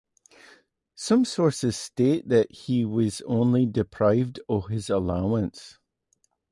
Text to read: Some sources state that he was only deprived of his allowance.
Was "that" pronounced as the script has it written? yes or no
yes